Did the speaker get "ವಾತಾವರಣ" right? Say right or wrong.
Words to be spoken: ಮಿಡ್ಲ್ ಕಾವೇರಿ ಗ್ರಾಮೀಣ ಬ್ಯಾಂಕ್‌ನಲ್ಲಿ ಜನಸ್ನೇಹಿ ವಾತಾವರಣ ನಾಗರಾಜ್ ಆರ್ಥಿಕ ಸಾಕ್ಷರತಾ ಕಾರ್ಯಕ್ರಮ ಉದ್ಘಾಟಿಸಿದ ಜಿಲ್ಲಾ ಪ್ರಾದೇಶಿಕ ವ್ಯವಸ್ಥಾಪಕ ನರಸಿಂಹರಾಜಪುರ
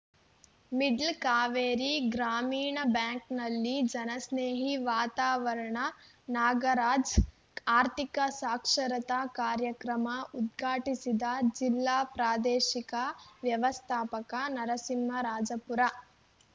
right